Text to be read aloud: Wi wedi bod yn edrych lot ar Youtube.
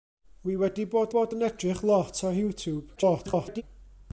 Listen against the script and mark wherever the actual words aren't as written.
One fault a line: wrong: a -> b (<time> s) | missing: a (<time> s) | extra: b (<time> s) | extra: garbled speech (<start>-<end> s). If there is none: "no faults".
extra: bod (1.1 s)
extra: garbled speech (3.0-3.6 s)